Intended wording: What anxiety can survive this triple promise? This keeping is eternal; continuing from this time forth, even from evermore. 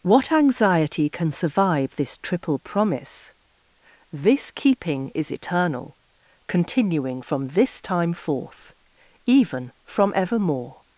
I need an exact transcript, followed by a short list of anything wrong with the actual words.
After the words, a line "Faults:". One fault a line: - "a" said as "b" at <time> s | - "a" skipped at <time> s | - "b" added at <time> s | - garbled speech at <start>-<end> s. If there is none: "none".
What anxiety can survive this triple promise? This keeping is eternal; continuing from this time forth, even from evermore.
Faults:
none